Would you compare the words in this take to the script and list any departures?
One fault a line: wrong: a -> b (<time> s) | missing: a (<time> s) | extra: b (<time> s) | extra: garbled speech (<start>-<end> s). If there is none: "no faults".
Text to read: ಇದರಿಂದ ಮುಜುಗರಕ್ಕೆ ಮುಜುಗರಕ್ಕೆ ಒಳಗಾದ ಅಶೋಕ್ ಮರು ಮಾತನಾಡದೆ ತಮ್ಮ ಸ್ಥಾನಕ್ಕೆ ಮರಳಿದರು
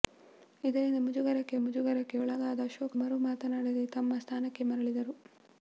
no faults